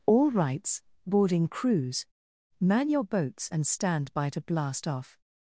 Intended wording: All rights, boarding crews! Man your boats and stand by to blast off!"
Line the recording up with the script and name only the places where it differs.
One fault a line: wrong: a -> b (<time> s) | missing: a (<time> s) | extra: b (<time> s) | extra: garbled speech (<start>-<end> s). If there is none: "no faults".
no faults